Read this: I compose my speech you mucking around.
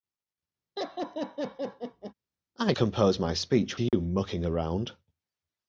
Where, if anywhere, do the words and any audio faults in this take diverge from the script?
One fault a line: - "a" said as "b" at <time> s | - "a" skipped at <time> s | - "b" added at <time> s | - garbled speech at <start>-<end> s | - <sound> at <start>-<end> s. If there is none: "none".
- laugh at 0.8-2.1 s
- dropout at 3.9-3.9 s